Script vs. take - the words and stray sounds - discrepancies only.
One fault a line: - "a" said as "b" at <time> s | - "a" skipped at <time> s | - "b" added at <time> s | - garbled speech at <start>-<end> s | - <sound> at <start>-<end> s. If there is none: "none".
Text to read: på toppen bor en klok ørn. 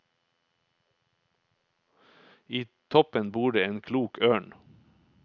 - "på" said as "I" at 2.5 s
- "det" added at 3.5 s